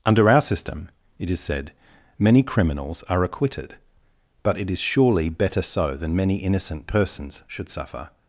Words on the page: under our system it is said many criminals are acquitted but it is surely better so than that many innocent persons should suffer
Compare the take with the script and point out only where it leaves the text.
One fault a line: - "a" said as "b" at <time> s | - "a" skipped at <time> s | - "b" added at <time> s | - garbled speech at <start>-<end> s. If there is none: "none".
- "that" skipped at 6.1 s